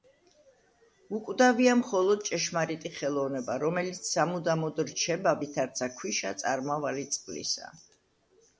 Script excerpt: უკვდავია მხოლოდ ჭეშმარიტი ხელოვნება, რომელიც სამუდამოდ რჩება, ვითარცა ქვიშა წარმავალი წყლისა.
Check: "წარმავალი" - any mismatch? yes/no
no